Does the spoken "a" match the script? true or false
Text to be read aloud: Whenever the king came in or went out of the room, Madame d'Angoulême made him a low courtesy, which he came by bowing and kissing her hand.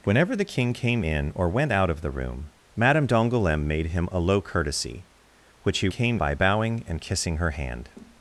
true